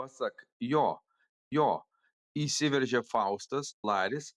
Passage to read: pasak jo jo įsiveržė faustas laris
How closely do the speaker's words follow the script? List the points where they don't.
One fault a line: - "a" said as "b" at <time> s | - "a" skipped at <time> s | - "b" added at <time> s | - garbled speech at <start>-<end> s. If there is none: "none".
none